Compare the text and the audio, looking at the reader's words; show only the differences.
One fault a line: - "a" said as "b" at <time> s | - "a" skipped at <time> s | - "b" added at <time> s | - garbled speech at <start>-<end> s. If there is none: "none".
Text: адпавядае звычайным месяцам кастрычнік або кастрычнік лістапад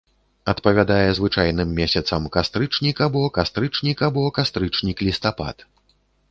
- "або кастрычнік" added at 4.1 s